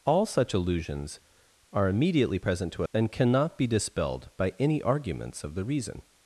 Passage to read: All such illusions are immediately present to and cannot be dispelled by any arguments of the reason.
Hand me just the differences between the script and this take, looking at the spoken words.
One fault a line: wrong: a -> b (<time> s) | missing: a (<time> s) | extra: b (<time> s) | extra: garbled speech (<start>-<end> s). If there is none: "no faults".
no faults